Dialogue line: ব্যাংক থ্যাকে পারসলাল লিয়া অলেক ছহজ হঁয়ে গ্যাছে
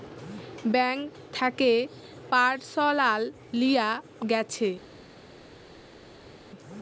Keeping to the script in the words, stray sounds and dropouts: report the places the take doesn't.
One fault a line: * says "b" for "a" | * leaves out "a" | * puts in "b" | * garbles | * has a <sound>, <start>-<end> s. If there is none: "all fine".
* leaves out "অলেক ছহজ হঁয়ে"